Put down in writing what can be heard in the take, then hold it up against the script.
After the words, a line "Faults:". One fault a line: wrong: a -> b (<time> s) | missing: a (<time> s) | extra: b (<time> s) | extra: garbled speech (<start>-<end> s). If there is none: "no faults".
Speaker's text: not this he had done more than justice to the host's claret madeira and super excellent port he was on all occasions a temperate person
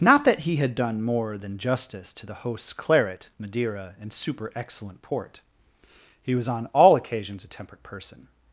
not that he had done more than justice to the host's claret madeira and super excellent port he was on all occasions a temperate person
Faults:
wrong: this -> that (0.2 s)